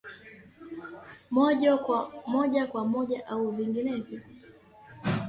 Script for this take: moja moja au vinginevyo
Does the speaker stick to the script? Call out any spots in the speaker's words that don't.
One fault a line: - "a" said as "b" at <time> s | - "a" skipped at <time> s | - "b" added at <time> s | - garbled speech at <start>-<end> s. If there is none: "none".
- "kwa" added at 2.6 s